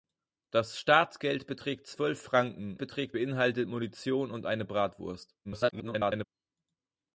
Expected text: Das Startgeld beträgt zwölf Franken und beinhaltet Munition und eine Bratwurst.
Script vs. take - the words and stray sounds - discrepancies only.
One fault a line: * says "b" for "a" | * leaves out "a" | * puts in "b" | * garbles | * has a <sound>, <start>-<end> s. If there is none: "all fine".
* says "beträgt" for "und"
* garbles